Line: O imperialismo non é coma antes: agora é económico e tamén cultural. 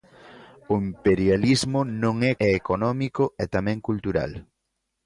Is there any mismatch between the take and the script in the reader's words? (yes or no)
yes